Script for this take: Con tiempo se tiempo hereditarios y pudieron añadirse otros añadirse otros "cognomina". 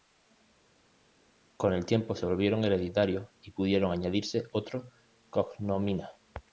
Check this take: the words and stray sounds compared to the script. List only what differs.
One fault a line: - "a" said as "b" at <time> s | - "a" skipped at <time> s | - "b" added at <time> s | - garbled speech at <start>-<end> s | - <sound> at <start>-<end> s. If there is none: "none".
- "el" added at 1.7 s
- "tiempo" said as "volvieron" at 2.3 s
- "añadirse otros" skipped at 4.8 s